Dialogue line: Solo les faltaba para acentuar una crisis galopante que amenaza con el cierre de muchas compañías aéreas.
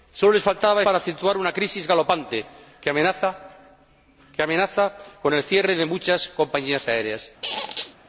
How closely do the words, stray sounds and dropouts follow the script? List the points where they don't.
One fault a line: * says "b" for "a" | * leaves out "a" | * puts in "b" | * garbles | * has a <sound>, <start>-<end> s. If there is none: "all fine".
* has a squeak, 7.4-8.0 s